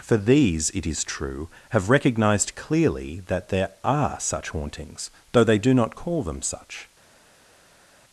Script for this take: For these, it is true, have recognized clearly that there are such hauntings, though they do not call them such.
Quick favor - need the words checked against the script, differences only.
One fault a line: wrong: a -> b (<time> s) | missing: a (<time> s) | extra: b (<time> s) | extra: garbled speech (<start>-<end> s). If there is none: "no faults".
no faults